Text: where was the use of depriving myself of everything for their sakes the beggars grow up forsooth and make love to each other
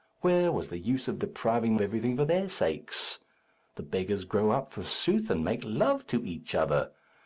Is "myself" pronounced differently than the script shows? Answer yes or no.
yes